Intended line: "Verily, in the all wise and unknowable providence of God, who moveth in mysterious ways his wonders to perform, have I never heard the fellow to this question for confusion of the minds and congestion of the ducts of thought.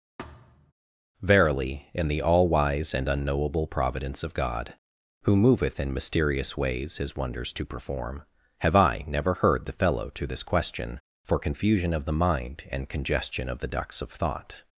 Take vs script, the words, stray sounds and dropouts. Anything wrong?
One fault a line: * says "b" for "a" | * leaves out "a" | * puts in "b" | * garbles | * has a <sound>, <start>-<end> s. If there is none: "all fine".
* has a thud, 0.2-0.7 s
* says "mind" for "minds"